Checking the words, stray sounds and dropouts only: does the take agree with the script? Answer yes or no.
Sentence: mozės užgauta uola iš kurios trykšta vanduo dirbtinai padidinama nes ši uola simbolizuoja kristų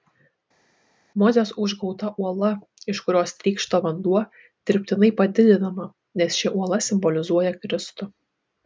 yes